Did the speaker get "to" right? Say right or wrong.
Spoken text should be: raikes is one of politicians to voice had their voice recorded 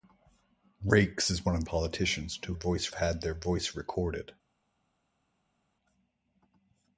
right